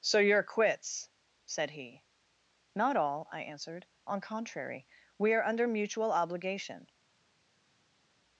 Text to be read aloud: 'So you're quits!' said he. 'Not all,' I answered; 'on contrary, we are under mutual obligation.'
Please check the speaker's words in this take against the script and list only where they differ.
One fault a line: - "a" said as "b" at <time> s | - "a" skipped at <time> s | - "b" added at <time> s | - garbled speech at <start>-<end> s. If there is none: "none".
none